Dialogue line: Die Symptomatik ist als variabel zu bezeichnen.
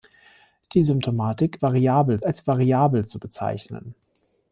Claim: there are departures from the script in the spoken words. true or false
true